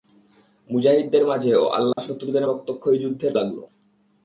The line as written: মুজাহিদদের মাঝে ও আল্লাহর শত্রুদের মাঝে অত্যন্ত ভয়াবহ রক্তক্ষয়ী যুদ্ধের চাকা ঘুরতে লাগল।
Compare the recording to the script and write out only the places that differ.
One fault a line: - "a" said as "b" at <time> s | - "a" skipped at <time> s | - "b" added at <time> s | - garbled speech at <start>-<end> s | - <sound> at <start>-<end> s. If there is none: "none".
- dropout at 1.9-2.0 s
- "মাঝে অত্যন্ত ভয়াবহ" skipped at 2.5 s
- "চাকা ঘুরতে" skipped at 3.3 s